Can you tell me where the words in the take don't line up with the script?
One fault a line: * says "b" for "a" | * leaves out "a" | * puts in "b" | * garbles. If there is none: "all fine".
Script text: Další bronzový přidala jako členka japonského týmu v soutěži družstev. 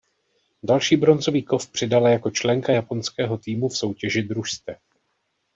* puts in "kov"